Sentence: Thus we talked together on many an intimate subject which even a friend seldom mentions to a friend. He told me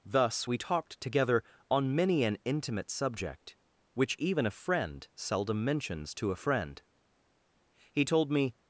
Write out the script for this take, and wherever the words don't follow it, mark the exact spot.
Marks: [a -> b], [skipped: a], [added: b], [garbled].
Thus we talked together on many an intimate subject which even a friend seldom mentions to a friend. He told me